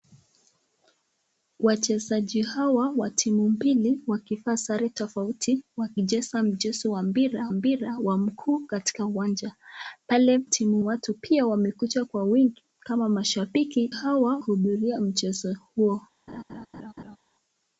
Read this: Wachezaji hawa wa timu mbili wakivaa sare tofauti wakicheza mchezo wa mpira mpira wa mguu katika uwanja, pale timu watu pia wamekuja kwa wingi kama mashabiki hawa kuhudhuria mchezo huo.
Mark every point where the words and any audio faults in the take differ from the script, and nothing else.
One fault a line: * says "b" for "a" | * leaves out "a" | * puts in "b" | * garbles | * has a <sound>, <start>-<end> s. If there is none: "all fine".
* has a laugh, 16.3-17.2 s